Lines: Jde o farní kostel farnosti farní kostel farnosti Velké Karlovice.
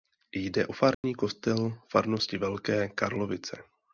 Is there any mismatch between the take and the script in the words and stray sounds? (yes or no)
yes